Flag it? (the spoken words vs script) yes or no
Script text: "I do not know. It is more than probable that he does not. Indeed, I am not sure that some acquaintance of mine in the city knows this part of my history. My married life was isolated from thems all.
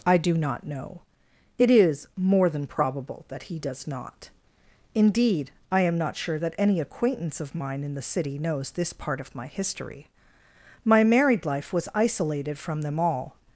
yes